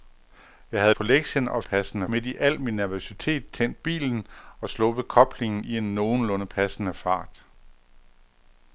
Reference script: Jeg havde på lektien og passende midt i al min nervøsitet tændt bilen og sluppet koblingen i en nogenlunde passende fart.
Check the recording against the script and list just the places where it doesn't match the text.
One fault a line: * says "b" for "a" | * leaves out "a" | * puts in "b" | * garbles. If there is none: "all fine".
all fine